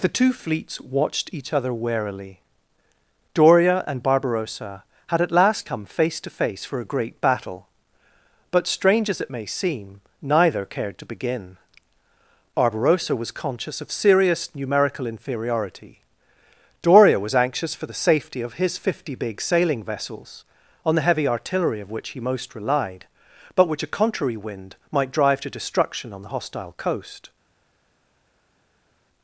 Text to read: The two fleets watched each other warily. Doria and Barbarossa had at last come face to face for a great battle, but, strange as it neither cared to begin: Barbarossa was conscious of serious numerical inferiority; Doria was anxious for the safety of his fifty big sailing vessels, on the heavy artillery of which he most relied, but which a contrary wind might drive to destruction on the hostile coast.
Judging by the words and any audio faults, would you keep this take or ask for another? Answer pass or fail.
fail